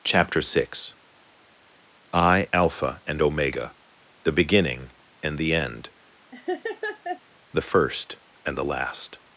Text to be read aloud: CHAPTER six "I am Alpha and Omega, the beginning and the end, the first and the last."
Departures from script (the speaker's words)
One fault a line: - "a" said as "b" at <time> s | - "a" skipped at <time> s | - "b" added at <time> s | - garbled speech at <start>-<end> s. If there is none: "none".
- "am" skipped at 2.5 s